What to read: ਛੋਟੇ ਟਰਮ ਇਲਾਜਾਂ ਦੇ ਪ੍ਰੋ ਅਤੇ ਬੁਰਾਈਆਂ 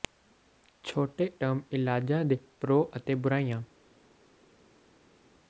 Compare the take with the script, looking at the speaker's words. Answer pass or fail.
pass